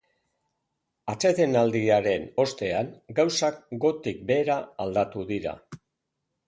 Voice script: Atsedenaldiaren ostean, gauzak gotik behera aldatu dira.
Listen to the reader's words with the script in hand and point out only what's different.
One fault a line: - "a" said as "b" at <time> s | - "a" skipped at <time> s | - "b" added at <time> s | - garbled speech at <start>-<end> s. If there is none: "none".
none